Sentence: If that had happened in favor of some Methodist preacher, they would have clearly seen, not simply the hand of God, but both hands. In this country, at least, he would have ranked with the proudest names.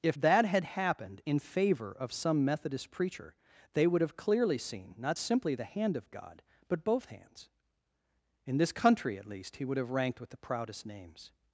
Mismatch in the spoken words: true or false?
false